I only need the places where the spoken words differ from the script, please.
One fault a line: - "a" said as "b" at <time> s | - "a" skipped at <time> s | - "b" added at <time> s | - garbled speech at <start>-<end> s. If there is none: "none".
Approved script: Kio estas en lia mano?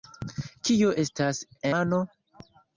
- "en lia" skipped at 1.4 s